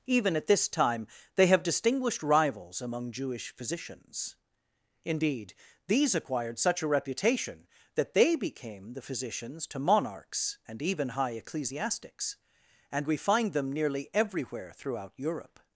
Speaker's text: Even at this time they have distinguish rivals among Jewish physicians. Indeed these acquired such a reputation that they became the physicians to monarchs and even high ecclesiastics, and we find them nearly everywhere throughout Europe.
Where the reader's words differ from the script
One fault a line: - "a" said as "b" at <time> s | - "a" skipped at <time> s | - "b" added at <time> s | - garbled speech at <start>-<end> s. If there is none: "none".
- "distinguish" said as "distinguished" at 1.6 s